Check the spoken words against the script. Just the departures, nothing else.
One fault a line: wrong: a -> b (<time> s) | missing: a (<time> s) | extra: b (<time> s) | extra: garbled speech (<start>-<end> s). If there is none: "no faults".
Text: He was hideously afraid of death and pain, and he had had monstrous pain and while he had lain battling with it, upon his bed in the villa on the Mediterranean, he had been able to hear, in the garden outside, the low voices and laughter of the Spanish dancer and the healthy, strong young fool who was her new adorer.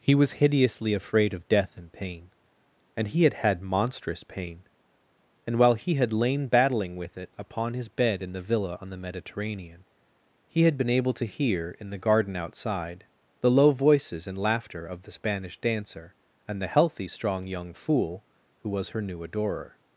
no faults